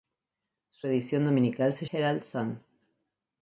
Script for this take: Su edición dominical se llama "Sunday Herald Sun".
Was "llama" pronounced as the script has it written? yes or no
no